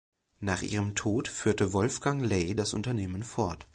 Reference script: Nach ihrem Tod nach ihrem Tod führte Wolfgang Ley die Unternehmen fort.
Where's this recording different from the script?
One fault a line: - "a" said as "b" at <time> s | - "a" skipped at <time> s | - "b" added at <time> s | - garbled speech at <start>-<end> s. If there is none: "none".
- "nach ihrem Tod" skipped at 1.3 s
- "die" said as "das" at 2.5 s